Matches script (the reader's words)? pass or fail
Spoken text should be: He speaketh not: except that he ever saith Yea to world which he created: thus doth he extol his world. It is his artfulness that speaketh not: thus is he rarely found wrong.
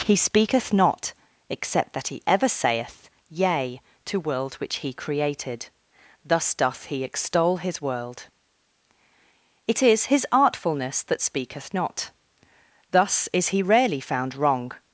pass